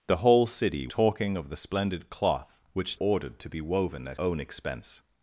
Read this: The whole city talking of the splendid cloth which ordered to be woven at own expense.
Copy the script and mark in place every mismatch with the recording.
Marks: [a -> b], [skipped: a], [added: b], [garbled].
The whole city talking of the splendid cloth which ordered to be woven at own expense.